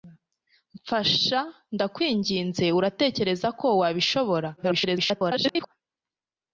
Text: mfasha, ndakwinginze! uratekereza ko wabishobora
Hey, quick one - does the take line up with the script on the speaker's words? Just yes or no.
no